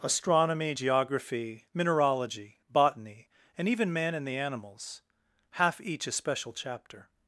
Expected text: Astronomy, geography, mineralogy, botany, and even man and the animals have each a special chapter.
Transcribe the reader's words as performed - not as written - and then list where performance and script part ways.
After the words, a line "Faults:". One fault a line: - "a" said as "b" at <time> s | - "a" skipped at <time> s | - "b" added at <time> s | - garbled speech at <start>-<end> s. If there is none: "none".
Astronomy, geography, mineralogy, botany, and even man and the animals half each a special chapter.
Faults:
- "have" said as "half" at 5.5 s